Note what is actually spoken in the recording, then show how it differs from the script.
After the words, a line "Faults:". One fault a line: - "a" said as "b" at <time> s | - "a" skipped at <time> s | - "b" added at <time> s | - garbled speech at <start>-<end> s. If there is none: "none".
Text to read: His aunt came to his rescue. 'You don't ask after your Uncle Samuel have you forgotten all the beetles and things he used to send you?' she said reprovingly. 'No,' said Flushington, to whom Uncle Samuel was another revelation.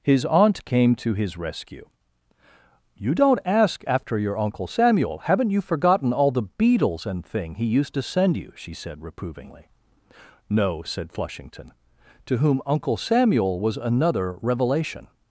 His aunt came to his rescue. 'You don't ask after your Uncle Samuel haven't you forgotten all the beetles and thing he used to send you?' she said reprovingly. 'No,' said Flushington, to whom Uncle Samuel was another revelation.
Faults:
- "have" said as "haven't" at 5.2 s
- "things" said as "thing" at 7.2 s